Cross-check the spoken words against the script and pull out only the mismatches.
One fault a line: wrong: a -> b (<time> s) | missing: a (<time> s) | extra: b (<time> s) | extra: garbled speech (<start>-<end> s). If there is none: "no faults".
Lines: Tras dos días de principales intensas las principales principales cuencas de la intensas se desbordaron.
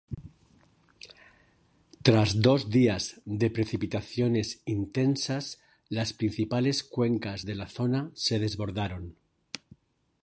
wrong: principales -> precipitaciones (3.5 s)
missing: principales (6.8 s)
wrong: intensas -> zona (7.7 s)